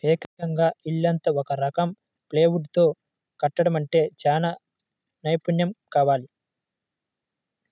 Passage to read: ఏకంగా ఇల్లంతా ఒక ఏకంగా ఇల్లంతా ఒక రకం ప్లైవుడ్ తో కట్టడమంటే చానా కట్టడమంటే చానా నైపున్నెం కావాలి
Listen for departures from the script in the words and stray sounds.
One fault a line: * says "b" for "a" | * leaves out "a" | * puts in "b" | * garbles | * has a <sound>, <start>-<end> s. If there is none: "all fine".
* leaves out "ఏకంగా ఇల్లంతా ఒక"
* leaves out "కట్టడమంటే చానా"